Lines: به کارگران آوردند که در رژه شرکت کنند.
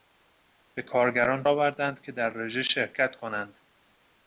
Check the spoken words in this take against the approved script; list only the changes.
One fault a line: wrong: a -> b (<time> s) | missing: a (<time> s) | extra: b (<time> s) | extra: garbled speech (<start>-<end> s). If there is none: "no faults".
no faults